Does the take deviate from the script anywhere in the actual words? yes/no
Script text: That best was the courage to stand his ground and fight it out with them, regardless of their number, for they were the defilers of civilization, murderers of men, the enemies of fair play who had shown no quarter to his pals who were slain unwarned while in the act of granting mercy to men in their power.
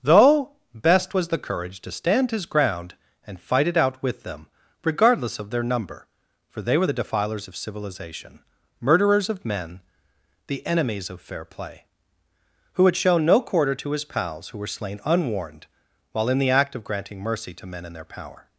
yes